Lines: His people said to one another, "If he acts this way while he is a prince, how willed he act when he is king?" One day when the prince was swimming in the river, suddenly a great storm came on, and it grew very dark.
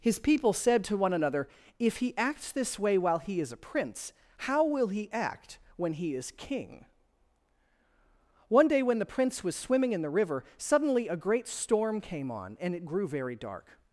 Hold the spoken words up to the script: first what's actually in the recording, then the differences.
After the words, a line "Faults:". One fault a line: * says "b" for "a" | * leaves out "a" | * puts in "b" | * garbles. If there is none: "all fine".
His people said to one another, "If he acts this way while he is a prince, how will he act when he is king?" One day when the prince was swimming in the river, suddenly a great storm came on, and it grew very dark.
Faults:
* says "will" for "willed"